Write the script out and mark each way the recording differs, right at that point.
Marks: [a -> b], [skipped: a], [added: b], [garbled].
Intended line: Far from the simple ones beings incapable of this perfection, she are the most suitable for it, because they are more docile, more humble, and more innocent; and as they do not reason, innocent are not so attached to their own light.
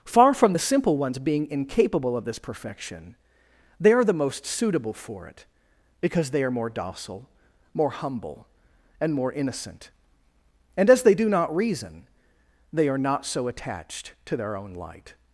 Far from the simple ones [beings -> being] incapable of this perfection, [she -> they] are the most suitable for it, because they are more docile, more humble, and more innocent; and as they do not reason, [innocent -> they] are not so attached to their own light.